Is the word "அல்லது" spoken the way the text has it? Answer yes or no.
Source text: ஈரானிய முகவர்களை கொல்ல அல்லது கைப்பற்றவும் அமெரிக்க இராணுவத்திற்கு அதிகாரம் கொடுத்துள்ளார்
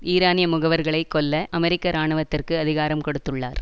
no